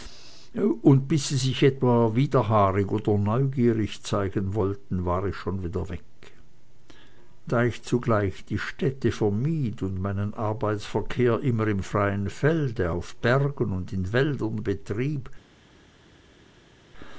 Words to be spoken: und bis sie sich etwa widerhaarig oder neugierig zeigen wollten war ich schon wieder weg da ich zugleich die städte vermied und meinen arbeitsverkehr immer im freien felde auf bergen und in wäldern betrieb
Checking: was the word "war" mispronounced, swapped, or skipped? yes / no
no